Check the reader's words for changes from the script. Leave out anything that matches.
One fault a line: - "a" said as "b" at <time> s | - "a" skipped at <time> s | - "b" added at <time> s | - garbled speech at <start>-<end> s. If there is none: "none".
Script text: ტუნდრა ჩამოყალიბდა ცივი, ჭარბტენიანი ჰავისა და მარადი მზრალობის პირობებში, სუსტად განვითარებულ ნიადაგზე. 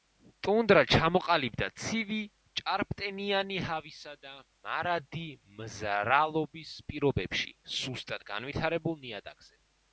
none